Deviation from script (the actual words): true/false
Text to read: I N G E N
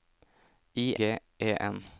true